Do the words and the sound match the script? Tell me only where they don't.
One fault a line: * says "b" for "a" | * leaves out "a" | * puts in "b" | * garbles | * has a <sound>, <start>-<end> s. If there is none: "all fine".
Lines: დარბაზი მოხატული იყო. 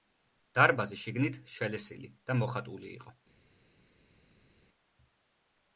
* puts in "შიგნით შელესილი და"